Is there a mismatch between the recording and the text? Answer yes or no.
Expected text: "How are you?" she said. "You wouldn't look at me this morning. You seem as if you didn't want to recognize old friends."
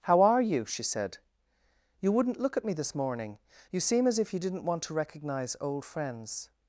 no